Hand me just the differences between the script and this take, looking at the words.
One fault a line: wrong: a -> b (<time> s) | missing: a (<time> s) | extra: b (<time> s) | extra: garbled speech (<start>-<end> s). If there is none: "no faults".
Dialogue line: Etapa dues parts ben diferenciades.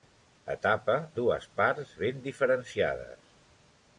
no faults